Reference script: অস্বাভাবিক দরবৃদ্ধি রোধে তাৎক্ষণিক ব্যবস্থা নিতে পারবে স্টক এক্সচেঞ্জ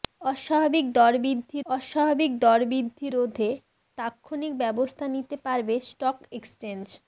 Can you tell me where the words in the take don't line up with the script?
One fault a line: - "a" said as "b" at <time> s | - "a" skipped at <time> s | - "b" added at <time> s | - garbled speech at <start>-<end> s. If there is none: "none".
- "অস্বাভাবিক দরবৃদ্ধি" added at 1.7 s